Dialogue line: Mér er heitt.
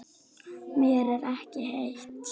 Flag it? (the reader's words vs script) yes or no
yes